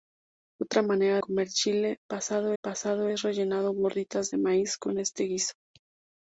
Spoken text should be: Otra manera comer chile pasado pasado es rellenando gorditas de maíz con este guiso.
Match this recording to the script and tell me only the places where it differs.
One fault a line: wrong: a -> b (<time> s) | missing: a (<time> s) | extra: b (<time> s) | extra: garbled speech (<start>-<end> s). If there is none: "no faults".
no faults